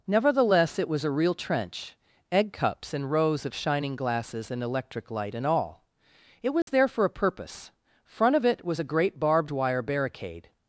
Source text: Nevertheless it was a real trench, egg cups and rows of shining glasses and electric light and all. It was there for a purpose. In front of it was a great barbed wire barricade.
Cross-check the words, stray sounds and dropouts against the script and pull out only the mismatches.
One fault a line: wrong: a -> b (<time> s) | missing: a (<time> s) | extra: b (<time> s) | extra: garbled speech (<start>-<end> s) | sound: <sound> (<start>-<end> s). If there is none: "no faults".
sound: dropout (6.6-6.7 s)
missing: In (7.7 s)